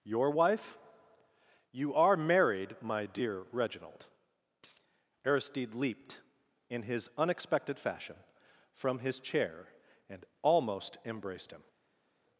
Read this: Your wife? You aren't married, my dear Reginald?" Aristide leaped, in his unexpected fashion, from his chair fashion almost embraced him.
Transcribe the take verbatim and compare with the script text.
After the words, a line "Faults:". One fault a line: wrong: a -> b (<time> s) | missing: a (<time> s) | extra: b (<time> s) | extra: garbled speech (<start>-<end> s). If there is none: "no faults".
Your wife? You are married, my dear Reginald?" Aristide leaped, in his unexpected fashion, from his chair and almost embraced him.
Faults:
wrong: aren't -> are (1.9 s)
wrong: fashion -> and (10.1 s)